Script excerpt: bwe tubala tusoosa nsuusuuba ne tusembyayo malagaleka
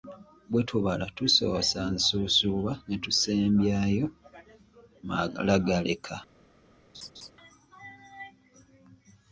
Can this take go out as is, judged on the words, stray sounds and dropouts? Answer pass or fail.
fail